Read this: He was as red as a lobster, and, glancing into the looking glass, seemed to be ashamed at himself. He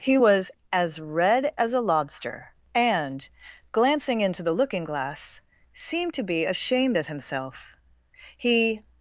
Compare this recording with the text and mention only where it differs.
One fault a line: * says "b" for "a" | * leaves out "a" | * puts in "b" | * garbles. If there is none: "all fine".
all fine